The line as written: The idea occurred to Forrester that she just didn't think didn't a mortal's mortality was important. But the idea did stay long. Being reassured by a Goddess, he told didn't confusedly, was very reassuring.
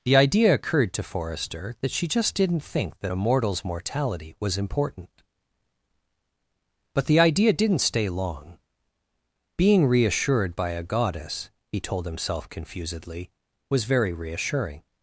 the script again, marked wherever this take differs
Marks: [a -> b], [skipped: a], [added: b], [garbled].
The idea occurred to Forrester that she just didn't think [didn't -> that] a mortal's mortality was important. But the idea [did -> didn't] stay long. Being reassured by a Goddess, he told [didn't -> himself] confusedly, was very reassuring.